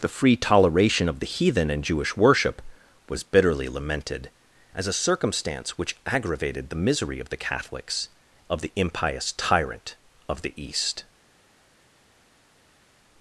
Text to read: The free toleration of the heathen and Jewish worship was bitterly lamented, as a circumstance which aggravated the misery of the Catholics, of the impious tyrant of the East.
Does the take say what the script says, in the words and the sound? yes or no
yes